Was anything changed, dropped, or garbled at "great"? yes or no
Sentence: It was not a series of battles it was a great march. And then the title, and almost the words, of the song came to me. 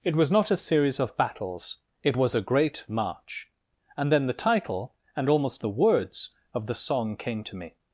no